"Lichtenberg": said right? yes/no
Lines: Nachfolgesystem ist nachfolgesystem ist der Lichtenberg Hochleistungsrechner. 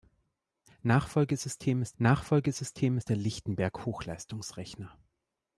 yes